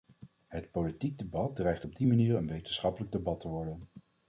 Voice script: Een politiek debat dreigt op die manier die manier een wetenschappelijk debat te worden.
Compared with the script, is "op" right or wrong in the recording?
right